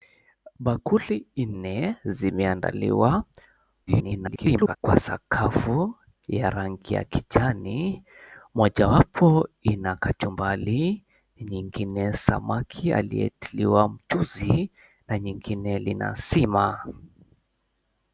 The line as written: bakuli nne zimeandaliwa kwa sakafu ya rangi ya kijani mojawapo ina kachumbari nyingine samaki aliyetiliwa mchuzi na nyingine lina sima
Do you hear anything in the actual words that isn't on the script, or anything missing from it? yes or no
yes